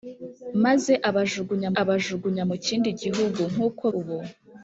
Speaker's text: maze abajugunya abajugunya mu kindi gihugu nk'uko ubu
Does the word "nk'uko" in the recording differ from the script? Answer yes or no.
no